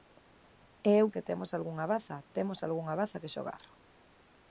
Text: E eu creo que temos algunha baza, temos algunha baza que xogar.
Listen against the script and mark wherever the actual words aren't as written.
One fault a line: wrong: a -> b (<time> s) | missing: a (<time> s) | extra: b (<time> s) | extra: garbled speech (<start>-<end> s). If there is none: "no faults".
missing: creo (1.1 s)